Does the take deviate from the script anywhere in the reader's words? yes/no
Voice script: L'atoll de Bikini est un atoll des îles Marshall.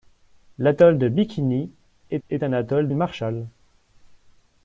yes